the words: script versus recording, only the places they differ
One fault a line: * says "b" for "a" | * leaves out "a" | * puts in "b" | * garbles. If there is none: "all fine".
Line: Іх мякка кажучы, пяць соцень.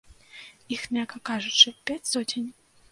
all fine